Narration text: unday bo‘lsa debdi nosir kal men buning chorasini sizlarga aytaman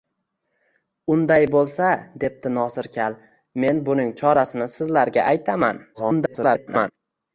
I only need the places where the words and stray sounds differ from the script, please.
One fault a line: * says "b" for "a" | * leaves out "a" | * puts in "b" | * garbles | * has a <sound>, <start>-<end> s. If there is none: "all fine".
* garbles